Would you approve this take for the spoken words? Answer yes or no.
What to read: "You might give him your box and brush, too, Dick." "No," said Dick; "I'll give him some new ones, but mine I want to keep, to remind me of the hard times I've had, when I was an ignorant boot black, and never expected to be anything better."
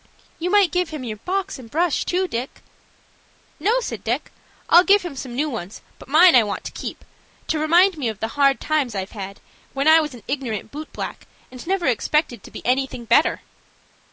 yes